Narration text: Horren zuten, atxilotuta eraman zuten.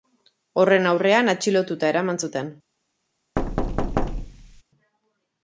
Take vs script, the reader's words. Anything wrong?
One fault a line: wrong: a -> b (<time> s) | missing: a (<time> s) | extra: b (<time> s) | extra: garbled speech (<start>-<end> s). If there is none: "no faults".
wrong: zuten -> aurrean (0.9 s)